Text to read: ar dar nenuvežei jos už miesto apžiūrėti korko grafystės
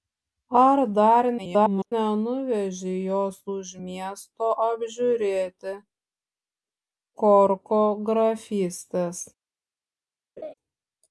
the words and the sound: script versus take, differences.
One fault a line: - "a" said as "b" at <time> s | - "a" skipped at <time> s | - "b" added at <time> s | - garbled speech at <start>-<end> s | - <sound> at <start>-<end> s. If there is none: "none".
- garbled speech at 1.4-1.9 s
- laugh at 10.4-10.5 s